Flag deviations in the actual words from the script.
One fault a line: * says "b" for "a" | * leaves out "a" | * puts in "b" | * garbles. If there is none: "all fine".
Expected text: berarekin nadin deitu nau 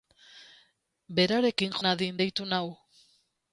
all fine